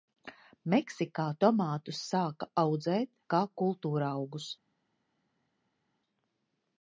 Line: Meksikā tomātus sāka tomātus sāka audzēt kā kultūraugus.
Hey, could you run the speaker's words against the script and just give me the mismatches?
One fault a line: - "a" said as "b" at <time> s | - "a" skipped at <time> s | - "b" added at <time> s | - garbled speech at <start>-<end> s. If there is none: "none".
- "tomātus sāka" skipped at 2.5 s